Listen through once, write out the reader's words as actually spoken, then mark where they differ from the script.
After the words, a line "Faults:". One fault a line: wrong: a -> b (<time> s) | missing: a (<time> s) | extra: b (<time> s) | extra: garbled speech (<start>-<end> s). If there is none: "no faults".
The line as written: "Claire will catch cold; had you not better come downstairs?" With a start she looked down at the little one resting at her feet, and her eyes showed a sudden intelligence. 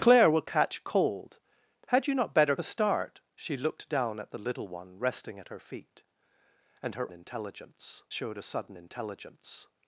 "Claire will catch cold; had you not better a start she looked down at the little one resting at her feet, and her intelligence showed a sudden intelligence.
Faults:
missing: come downstairs With (2.5 s)
wrong: eyes -> intelligence (7.1 s)